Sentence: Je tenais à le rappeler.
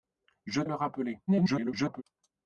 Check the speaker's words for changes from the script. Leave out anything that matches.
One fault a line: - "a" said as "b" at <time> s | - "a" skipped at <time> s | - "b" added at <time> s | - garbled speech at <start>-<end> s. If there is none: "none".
- "tenais" skipped at 0.6 s
- garbled speech at 1.3-2.0 s